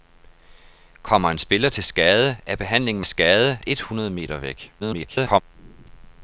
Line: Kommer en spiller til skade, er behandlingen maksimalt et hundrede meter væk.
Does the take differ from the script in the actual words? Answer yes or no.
yes